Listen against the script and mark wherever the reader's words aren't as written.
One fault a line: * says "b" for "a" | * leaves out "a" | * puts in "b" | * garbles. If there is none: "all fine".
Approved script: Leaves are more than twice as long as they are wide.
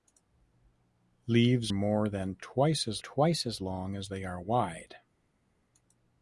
* leaves out "are"
* puts in "twice as"